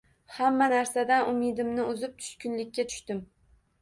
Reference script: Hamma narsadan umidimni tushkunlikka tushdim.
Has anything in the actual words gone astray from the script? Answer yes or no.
yes